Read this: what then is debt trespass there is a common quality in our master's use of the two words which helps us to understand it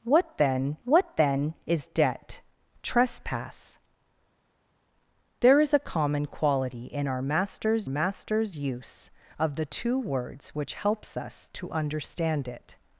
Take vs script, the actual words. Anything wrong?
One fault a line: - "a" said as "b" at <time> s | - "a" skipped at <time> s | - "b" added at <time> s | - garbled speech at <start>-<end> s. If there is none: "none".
- "what then" added at 0.8 s
- "master's" added at 7.9 s